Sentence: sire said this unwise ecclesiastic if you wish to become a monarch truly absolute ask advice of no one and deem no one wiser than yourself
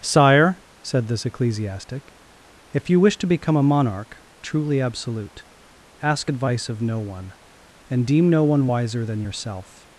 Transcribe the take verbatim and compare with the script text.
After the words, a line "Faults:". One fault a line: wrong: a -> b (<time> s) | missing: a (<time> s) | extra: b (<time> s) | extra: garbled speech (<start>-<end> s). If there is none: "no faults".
sire said this ecclesiastic if you wish to become a monarch truly absolute ask advice of no one and deem no one wiser than yourself
Faults:
missing: unwise (1.3 s)